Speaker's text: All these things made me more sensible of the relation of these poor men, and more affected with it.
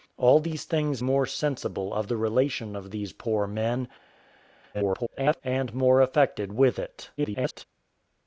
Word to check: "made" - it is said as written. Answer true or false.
false